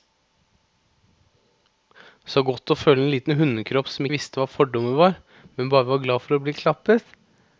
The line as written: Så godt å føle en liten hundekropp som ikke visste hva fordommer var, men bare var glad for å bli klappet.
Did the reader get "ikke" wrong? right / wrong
wrong